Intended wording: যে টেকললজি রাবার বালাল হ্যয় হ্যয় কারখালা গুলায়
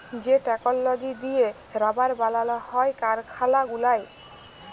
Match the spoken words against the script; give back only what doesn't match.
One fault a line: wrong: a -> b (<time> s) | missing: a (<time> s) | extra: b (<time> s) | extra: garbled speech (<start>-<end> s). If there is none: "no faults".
extra: দিঁয়ে (1.2 s)
missing: হ্যয় (2.9 s)